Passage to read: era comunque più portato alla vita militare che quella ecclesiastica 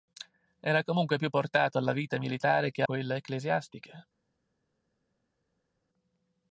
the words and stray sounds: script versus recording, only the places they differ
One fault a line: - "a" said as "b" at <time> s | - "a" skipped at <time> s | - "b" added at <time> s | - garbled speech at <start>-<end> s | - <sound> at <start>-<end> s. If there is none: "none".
none